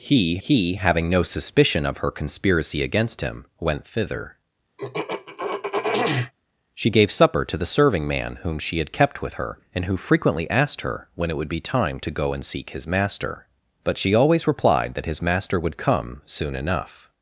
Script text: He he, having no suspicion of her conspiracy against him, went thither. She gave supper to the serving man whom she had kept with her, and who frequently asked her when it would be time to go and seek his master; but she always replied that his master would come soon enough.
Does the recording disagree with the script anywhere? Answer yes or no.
no